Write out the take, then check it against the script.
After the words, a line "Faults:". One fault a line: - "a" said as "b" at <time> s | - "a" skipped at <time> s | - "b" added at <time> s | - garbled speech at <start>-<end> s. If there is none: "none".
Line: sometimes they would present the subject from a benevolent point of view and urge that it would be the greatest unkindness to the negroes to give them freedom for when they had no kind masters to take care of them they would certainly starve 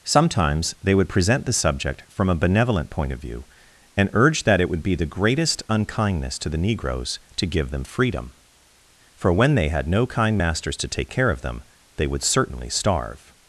sometimes they would present the subject from a benevolent point of view and urge that it would be the greatest unkindness to the negroes to give them freedom for when they had no kind masters to take care of them they would certainly starve
Faults:
none